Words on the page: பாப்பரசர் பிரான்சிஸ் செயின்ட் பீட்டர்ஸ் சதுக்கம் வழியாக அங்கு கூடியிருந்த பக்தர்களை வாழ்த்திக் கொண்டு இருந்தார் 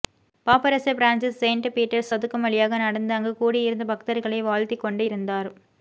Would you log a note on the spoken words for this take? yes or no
yes